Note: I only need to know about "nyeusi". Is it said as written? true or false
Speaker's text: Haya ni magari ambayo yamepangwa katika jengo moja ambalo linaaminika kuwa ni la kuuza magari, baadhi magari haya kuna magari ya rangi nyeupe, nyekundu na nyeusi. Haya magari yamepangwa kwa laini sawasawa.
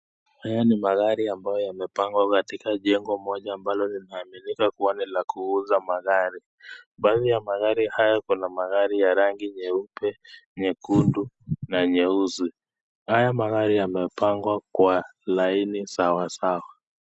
true